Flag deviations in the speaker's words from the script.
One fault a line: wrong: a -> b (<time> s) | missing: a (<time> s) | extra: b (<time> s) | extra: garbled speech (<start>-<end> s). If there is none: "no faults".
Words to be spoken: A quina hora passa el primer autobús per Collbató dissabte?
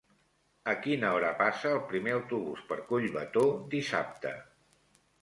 no faults